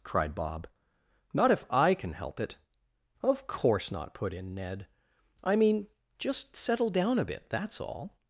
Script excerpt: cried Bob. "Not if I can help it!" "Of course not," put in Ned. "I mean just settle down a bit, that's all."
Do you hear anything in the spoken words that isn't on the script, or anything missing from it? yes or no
no